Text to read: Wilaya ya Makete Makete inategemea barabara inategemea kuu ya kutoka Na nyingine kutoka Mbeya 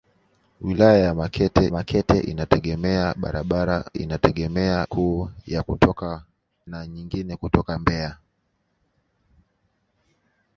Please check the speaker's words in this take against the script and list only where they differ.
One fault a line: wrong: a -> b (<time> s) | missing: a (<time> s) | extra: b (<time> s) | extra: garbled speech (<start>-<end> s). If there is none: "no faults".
no faults